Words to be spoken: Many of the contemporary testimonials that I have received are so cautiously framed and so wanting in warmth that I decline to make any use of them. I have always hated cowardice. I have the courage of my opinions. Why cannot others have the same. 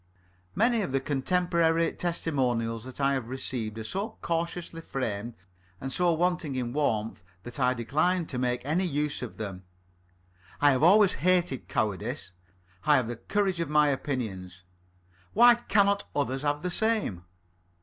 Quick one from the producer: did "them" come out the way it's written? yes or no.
yes